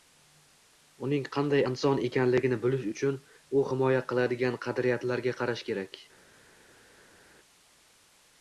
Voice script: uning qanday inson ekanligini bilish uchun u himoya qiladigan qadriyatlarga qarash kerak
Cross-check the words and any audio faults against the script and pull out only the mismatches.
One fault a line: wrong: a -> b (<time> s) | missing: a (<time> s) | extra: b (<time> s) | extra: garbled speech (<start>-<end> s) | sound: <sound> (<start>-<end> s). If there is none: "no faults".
no faults